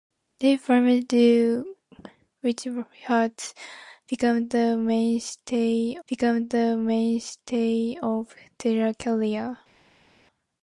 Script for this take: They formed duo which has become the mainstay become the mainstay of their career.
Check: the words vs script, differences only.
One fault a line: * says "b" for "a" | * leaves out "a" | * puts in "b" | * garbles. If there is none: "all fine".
all fine